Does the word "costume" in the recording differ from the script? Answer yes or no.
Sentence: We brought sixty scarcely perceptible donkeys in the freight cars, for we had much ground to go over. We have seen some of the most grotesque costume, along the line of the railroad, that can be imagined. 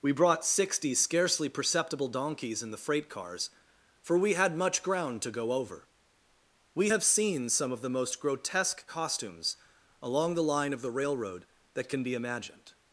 yes